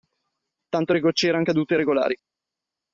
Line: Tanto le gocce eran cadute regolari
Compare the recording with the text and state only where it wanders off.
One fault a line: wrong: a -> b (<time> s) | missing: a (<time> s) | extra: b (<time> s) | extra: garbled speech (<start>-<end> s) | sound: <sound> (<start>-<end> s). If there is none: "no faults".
no faults